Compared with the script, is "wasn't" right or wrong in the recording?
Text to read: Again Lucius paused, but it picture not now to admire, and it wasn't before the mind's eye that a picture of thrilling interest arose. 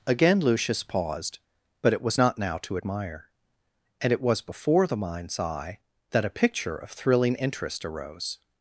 wrong